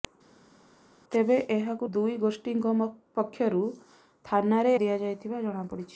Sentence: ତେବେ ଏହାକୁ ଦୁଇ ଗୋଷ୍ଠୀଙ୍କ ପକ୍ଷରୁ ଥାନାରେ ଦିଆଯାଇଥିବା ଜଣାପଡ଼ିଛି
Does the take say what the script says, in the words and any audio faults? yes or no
yes